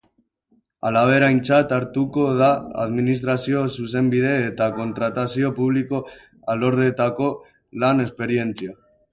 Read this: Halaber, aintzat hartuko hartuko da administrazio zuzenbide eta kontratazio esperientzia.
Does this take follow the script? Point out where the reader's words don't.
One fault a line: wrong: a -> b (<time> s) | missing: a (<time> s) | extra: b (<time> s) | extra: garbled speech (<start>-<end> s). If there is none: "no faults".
missing: hartuko (2.2 s)
extra: publiko alorretako lan (5.6 s)